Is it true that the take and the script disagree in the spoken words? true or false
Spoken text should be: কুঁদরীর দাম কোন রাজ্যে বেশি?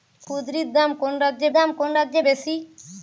true